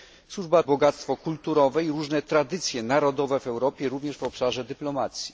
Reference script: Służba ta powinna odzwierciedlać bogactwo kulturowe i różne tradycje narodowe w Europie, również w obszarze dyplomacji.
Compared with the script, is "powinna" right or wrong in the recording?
wrong